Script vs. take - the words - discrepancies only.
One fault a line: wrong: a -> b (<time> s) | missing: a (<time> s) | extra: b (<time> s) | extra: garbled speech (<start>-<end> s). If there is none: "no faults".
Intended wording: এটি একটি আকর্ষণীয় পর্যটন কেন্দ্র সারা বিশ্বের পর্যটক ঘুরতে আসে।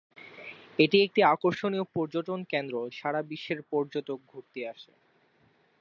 no faults